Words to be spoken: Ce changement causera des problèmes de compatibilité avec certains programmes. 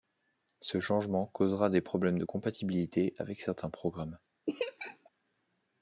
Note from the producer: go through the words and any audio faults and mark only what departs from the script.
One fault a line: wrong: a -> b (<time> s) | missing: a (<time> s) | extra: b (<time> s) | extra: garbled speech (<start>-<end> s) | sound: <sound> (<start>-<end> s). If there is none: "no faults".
sound: laugh (4.5-5.1 s)